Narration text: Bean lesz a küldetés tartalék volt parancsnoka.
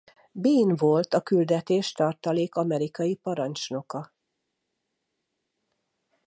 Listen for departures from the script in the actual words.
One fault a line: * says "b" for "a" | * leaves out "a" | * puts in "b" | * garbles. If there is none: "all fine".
* says "volt" for "lesz"
* says "amerikai" for "volt"